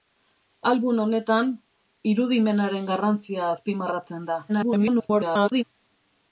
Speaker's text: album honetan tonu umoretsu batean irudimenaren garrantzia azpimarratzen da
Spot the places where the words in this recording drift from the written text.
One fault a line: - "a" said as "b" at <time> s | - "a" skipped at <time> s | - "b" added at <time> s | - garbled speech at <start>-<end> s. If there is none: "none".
- "tonu umoretsu batean" skipped at 1.5 s
- garbled speech at 4.5-5.6 s